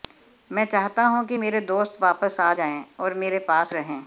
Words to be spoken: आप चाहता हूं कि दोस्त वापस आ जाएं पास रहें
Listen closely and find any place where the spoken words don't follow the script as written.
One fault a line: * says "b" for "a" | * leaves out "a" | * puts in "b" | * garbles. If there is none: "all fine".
* says "मैं" for "आप"
* puts in "मेरे"
* puts in "और मेरे"